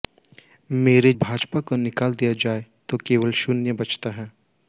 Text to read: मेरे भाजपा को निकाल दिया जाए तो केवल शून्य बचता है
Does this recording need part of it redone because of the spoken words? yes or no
no